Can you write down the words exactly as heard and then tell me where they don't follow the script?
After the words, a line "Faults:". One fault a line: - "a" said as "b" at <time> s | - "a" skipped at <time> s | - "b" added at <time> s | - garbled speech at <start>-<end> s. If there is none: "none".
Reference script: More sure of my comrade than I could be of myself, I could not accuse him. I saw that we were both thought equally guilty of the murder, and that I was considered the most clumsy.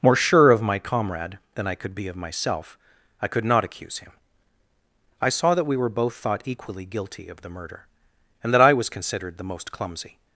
More sure of my comrade than I could be of myself, I could not accuse him. I saw that we were both thought equally guilty of the murder, and that I was considered the most clumsy.
Faults:
none